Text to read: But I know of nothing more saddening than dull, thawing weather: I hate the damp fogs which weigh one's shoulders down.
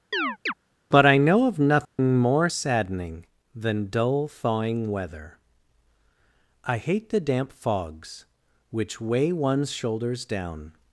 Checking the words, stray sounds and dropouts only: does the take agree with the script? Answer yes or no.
no